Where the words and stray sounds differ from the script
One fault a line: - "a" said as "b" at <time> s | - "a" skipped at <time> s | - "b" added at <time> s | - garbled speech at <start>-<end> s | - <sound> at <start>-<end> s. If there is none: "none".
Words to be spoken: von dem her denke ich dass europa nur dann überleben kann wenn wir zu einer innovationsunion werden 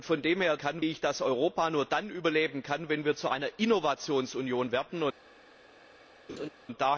- "denke" said as "kann" at 0.6 s
- laugh at 6.3-6.5 s